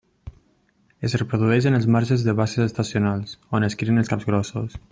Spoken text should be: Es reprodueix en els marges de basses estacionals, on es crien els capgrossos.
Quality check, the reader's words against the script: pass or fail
pass